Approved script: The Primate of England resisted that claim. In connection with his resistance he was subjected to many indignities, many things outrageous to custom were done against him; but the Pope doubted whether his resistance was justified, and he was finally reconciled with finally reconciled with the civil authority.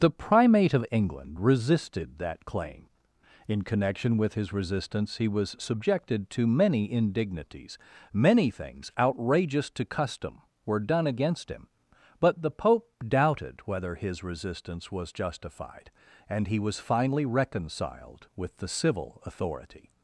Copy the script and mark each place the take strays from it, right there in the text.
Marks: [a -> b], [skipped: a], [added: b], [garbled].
The Primate of England resisted that claim. In connection with his resistance he was subjected to many indignities, many things outrageous to custom were done against him; but the Pope doubted whether his resistance was justified, and he was finally reconciled with [skipped: finally reconciled with] the civil authority.